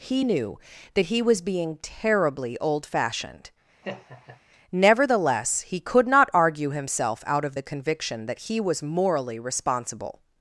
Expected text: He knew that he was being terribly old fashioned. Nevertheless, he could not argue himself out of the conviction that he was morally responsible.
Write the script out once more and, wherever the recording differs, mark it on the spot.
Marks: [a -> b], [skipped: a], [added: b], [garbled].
He knew that he was being terribly old fashioned. Nevertheless, he could not argue himself out of the conviction that he was morally responsible.